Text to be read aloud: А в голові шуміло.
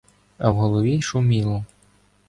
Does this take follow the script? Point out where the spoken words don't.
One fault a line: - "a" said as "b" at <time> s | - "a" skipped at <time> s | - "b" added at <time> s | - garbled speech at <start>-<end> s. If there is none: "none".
none